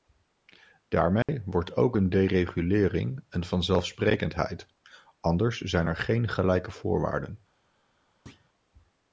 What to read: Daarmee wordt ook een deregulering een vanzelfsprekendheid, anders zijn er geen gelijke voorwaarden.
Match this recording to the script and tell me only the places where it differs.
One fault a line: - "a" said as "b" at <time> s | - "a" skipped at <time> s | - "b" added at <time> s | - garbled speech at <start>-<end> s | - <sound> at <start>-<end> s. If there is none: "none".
- dropout at 1.2-1.3 s
- thud at 8.3-8.5 s